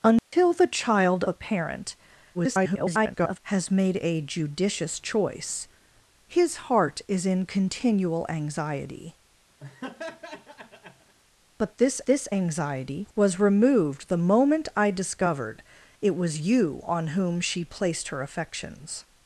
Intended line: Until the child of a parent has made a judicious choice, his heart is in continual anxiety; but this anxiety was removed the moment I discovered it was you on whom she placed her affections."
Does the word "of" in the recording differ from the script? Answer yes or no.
yes